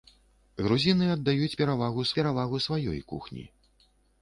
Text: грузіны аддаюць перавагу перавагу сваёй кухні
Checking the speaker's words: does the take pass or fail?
pass